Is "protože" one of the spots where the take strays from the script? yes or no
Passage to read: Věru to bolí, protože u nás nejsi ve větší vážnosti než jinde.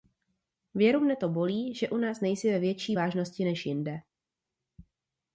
yes